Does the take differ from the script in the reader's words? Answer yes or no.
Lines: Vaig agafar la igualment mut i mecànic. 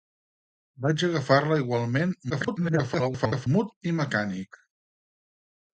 yes